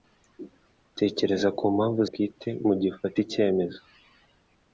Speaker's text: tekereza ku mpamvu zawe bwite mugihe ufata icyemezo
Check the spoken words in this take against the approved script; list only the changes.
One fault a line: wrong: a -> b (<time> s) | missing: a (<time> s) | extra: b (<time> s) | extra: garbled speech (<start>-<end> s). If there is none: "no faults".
missing: zawe (2.0 s)